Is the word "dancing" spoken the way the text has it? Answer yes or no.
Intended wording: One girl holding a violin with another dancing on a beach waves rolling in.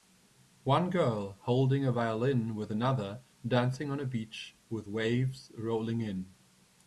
yes